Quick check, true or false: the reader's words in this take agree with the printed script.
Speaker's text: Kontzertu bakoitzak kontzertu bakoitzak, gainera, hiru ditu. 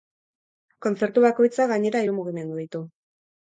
false